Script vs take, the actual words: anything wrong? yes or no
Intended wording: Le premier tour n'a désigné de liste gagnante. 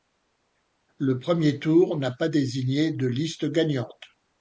yes